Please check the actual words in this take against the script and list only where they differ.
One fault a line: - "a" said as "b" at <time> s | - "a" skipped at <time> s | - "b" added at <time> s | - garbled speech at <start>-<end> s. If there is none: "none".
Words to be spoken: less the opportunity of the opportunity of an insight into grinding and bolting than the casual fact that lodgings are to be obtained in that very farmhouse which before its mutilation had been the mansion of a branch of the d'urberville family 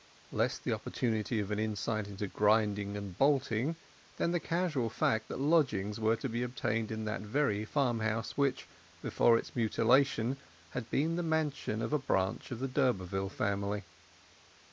- "the opportunity of" skipped at 1.5 s
- "are" said as "were" at 6.0 s